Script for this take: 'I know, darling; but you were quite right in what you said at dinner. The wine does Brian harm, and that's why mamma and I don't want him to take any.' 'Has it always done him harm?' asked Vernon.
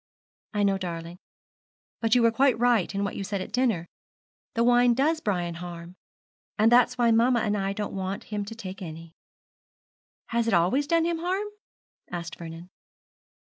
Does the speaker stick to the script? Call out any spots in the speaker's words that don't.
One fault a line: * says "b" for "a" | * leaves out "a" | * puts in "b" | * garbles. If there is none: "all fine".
all fine